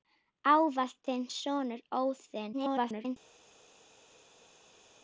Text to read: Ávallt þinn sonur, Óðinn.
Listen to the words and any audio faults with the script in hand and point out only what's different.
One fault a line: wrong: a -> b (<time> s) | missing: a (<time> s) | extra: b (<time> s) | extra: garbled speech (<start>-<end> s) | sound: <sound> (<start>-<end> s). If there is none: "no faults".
extra: garbled speech (2.5-3.2 s)